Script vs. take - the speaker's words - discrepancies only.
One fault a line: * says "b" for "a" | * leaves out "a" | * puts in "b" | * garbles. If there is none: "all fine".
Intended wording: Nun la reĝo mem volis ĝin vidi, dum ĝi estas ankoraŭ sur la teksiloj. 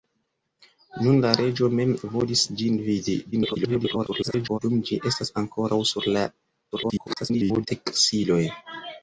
* garbles
* garbles